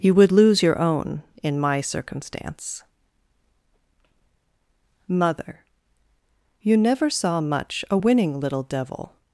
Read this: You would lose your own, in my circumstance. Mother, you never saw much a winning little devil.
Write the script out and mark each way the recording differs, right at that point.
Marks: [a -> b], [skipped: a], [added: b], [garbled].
You would lose your own, in my circumstance. Mother, you never saw much a winning little devil.